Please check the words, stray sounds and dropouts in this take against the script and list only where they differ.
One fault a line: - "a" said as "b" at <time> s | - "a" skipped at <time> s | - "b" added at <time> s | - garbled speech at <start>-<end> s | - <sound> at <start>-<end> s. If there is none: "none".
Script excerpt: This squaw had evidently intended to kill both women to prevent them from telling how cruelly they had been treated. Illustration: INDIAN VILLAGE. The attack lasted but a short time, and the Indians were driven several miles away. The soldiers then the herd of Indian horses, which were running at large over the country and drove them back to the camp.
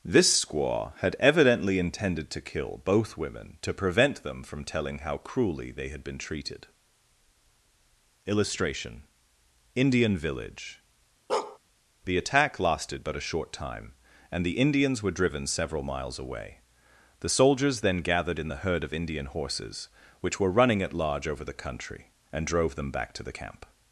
- bark at 11.3-11.6 s
- "gathered in" added at 18.0 s